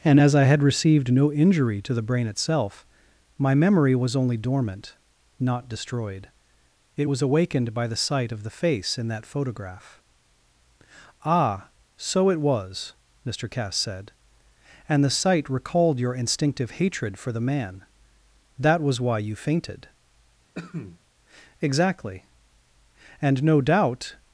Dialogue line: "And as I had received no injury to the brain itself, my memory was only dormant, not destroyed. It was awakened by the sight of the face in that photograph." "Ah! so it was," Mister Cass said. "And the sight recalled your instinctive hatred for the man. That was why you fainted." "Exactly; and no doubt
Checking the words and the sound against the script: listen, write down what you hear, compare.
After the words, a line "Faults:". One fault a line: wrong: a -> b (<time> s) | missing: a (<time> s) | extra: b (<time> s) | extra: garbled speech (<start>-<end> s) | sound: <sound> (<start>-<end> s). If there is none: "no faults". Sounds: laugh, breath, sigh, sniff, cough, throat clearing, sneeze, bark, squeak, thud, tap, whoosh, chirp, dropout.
"And as I had received no injury to the brain itself, my memory was only dormant, not destroyed. It was awakened by the sight of the face in that photograph." "Ah! so it was," Mister Cass said. "And the sight recalled your instinctive hatred for the man. That was why you fainted." "Exactly; and no doubt
Faults:
sound: cough (20.6-21.0 s)